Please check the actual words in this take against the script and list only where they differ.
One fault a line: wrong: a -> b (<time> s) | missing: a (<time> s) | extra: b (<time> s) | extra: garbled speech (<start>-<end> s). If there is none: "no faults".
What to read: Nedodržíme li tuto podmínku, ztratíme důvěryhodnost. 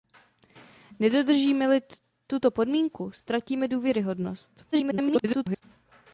extra: garbled speech (4.7-5.6 s)